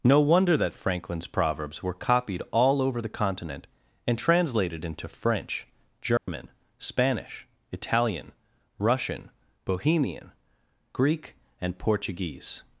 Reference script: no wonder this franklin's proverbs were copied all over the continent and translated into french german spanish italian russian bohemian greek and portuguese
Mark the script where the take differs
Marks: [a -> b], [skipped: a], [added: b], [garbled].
no wonder [this -> that] franklin's proverbs were copied all over the continent and translated into french german spanish italian russian bohemian greek and portuguese